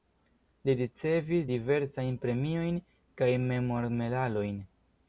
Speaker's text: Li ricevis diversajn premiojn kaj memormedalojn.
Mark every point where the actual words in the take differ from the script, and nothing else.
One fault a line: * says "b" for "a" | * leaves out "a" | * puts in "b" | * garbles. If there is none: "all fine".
all fine